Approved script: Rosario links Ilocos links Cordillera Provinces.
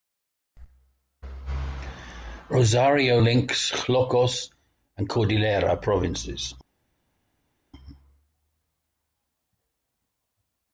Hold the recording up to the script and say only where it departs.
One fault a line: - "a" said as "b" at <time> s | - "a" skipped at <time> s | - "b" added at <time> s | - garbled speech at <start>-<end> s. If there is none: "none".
- "links" said as "and" at 5.0 s